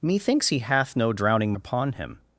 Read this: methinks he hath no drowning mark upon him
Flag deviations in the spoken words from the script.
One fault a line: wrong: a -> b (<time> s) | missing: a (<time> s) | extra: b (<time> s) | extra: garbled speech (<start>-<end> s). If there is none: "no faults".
missing: mark (1.5 s)